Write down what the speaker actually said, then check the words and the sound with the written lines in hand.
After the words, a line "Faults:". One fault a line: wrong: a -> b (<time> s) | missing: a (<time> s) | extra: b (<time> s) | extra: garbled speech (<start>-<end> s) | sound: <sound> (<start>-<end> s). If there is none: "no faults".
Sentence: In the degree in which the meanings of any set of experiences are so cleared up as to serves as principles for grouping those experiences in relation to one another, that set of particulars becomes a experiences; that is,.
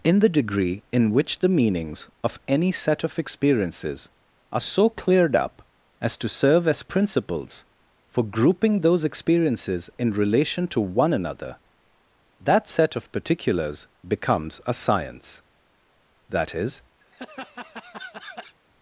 In the degree in which the meanings of any set of experiences are so cleared up as to serve as principles for grouping those experiences in relation to one another, that set of particulars becomes a science; that is,.
Faults:
wrong: serves -> serve (6.3 s)
wrong: experiences -> science (14.7 s)
sound: laugh (17.0-18.6 s)